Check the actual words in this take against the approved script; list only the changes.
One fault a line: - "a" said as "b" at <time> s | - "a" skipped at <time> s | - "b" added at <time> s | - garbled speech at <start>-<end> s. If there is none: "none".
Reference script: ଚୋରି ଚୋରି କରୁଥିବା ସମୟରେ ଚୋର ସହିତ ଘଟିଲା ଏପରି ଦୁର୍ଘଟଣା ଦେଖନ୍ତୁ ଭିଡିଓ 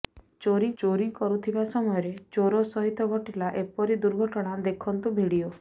none